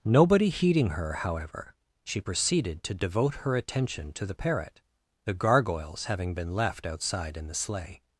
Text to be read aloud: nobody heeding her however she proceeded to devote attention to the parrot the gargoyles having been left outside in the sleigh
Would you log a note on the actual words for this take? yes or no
yes